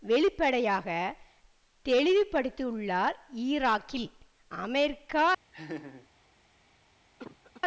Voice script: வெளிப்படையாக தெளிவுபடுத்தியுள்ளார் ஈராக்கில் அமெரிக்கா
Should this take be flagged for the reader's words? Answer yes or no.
no